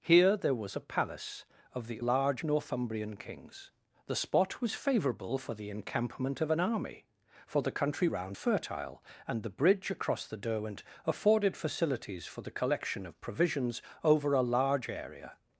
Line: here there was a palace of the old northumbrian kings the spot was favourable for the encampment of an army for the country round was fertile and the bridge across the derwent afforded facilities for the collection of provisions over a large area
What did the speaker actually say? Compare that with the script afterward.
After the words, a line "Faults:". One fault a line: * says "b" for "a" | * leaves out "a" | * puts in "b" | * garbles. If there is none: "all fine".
here there was a palace of the large northumbrian kings the spot was favourable for the encampment of an army for the country round fertile and the bridge across the derwent afforded facilities for the collection of provisions over a large area
Faults:
* says "large" for "old"
* leaves out "was"